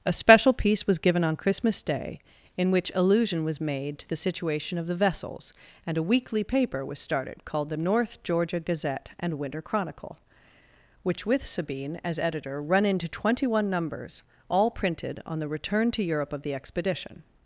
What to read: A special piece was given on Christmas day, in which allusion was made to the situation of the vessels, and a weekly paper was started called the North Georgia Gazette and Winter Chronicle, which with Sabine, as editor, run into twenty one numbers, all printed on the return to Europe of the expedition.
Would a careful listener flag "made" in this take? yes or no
no